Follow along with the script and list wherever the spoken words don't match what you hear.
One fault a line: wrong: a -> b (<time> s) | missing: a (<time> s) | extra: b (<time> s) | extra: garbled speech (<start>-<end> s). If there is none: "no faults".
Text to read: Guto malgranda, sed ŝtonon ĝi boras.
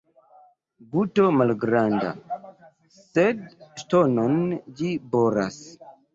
no faults